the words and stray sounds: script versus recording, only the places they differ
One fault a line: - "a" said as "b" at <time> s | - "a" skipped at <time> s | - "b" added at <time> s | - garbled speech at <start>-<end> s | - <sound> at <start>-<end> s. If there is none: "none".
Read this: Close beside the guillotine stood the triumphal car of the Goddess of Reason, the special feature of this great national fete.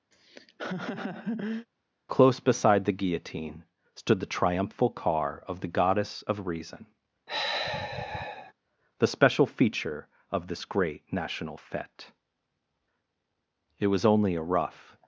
- laugh at 0.1-1.7 s
- sigh at 7.3-8.5 s
- "It was only a rough" added at 13.8 s